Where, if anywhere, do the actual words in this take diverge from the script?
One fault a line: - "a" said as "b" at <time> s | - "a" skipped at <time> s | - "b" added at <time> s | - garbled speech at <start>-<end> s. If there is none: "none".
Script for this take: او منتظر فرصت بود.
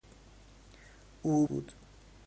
- "منتظر فرصت" skipped at 1.5 s